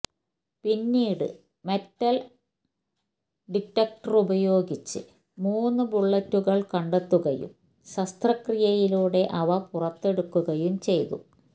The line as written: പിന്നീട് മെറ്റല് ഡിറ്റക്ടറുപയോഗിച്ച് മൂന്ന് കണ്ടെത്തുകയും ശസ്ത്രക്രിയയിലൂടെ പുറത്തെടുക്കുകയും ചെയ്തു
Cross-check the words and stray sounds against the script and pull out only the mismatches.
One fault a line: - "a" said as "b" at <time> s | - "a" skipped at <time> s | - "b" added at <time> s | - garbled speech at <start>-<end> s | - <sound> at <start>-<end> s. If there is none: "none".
- "ബുള്ളറ്റുകള്" added at 5.8 s
- "അവ" added at 9.4 s